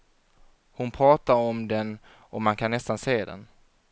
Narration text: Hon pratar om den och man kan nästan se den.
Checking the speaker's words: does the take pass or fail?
pass